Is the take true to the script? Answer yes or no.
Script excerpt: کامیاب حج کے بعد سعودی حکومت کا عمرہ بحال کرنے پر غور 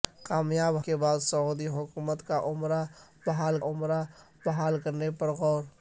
no